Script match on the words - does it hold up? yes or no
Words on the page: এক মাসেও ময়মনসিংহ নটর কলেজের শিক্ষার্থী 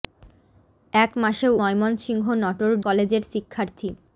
yes